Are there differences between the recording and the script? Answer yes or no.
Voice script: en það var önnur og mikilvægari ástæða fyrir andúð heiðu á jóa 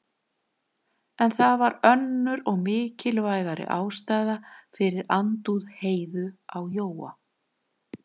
no